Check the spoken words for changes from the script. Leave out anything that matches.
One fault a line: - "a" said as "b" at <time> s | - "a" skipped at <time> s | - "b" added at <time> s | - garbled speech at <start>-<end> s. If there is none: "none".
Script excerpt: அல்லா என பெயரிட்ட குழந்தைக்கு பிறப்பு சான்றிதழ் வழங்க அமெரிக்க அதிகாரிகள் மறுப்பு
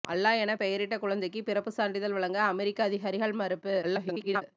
- garbled speech at 3.8-4.4 s